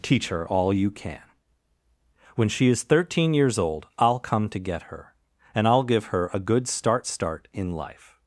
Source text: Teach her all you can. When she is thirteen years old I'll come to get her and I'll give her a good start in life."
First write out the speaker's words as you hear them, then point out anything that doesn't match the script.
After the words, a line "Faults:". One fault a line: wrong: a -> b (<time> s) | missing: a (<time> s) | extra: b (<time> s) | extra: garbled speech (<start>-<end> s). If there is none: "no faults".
Teach her all you can. When she is thirteen years old I'll come to get her and I'll give her a good start start in life."
Faults:
extra: start (7.0 s)